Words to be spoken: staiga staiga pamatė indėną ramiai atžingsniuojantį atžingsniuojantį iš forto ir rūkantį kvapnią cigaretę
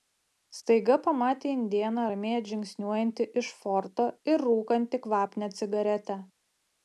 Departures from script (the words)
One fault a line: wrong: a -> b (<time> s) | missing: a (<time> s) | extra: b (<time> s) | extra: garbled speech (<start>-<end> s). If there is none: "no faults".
missing: staiga (0.9 s)
missing: atžingsniuojantį (3.3 s)